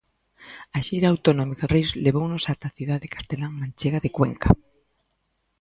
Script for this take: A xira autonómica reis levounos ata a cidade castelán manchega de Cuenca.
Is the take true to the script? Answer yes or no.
yes